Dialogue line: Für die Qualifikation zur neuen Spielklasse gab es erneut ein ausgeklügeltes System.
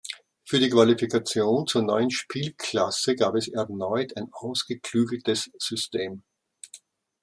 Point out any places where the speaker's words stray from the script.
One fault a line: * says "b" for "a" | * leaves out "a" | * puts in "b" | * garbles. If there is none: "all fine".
all fine